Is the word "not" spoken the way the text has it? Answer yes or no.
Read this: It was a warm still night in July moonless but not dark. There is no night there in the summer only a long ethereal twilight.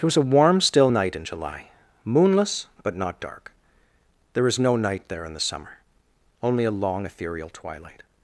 yes